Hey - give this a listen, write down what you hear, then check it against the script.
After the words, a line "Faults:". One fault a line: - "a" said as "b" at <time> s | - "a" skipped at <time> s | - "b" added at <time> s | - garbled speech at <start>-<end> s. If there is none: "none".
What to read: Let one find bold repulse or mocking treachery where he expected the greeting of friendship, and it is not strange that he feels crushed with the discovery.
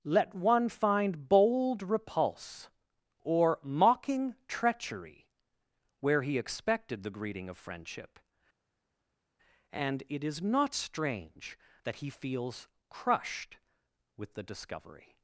Let one find bold repulse or mocking treachery where he expected the greeting of friendship, and it is not strange that he feels crushed with the discovery.
Faults:
none